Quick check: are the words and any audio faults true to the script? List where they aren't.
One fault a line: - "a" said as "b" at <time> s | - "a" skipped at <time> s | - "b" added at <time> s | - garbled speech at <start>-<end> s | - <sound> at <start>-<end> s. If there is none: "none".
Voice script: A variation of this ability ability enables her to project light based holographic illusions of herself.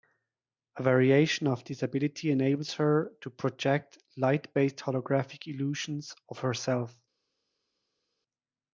- "ability" skipped at 2.3 s